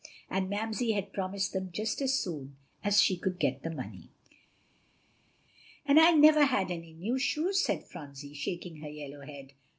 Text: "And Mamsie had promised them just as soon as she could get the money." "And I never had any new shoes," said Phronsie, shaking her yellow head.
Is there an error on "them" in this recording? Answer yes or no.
no